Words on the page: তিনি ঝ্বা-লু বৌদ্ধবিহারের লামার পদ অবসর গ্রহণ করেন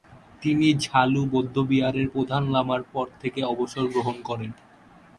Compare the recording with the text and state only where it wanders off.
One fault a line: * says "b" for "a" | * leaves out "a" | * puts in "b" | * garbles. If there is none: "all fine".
* puts in "প্রধান"
* puts in "থেকে"